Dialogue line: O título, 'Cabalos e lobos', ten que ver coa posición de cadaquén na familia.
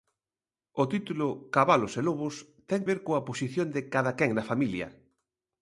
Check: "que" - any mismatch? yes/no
yes